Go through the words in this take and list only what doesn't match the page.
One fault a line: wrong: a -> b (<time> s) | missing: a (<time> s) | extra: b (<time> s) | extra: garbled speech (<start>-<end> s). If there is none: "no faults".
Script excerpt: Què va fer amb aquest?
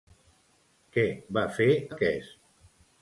missing: amb (1.7 s)